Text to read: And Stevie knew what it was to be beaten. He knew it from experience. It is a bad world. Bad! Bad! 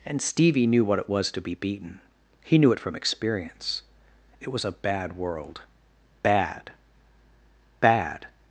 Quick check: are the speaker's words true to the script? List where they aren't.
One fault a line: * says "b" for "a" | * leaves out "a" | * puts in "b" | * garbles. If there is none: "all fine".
* says "was" for "is"